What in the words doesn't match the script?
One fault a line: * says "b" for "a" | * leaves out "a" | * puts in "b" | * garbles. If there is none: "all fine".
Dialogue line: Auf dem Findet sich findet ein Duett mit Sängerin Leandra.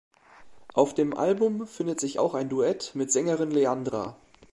* puts in "Album"
* says "auch" for "findet"